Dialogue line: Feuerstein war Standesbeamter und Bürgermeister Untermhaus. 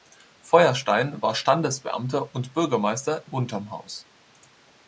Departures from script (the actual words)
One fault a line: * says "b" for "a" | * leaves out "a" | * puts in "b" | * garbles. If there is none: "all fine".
all fine